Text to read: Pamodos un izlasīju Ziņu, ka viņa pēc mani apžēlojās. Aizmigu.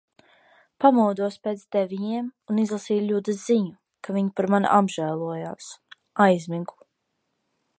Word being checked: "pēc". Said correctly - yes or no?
no